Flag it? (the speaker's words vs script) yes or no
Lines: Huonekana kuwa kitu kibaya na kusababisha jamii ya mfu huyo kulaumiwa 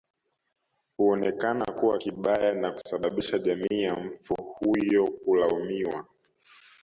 yes